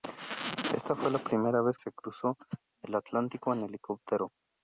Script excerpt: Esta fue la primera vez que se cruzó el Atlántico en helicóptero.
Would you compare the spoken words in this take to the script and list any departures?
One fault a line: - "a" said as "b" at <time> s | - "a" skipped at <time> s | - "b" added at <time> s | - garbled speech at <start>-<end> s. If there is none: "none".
- "que" skipped at 1.8 s